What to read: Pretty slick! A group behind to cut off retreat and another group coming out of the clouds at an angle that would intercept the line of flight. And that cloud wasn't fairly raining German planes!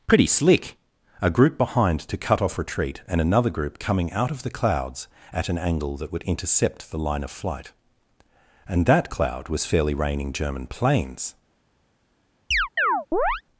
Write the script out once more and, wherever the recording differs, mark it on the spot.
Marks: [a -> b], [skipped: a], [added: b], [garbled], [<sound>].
Pretty slick! A group behind to cut off retreat and another group coming out of the clouds at an angle that would intercept the line of flight. And that cloud [wasn't -> was] fairly raining German planes! [chirp]